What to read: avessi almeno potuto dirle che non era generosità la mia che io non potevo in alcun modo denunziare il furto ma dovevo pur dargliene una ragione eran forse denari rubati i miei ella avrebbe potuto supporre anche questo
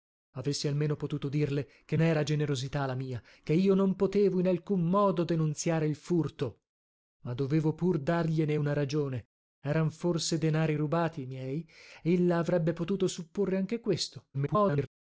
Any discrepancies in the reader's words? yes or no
yes